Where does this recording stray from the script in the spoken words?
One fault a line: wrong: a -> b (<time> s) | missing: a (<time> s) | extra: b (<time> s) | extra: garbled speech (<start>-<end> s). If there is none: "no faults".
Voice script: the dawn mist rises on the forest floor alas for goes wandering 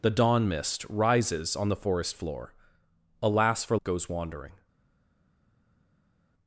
no faults